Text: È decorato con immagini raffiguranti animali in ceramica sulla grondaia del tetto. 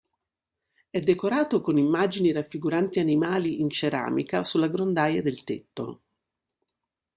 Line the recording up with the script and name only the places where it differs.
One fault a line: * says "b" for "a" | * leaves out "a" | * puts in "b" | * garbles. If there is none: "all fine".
all fine